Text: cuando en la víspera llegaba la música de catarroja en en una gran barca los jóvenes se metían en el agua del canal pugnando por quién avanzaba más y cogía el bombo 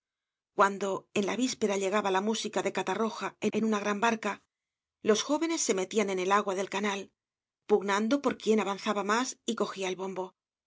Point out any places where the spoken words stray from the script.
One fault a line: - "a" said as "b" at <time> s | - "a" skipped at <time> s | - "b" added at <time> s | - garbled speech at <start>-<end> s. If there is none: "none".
none